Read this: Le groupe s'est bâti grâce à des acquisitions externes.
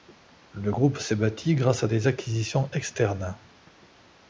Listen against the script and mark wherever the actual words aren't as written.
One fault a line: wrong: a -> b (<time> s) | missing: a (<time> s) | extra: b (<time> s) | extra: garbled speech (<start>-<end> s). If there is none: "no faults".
no faults